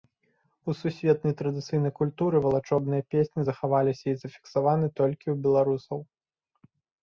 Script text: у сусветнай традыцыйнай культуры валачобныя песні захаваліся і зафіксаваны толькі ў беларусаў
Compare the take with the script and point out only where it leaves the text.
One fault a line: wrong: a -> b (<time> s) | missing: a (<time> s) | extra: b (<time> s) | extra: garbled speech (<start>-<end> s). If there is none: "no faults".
no faults